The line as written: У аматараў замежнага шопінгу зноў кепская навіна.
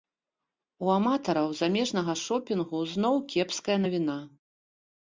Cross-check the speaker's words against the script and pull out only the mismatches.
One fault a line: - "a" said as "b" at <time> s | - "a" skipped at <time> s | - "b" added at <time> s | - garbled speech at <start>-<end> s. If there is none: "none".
none